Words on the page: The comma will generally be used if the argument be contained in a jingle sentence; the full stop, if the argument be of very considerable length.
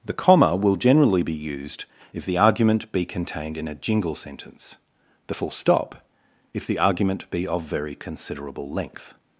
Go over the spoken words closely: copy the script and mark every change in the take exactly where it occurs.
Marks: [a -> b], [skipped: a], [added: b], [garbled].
The comma will generally be used if the argument be contained in a jingle sentence; the full stop, if the argument be of very considerable length.